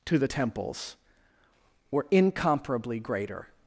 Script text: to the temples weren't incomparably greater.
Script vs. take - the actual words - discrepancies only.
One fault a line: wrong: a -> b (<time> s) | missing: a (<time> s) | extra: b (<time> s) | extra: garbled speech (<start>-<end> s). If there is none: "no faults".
wrong: weren't -> were (1.9 s)